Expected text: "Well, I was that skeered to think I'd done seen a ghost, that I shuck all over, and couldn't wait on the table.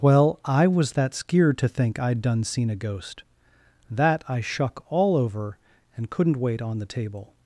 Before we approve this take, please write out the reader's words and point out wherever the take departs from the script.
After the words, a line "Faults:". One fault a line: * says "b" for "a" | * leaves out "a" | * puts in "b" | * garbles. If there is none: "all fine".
"Well, I was that skeered to think I'd done seen a ghost, that I shuck all over, and couldn't wait on the table.
Faults:
all fine